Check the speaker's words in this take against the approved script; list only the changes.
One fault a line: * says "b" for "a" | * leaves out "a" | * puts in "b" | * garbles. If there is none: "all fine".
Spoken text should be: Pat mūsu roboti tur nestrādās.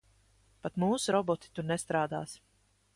all fine